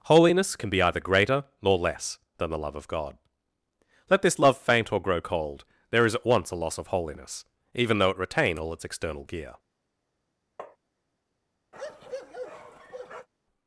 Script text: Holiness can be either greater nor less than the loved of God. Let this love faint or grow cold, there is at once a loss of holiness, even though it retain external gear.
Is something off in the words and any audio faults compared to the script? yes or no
yes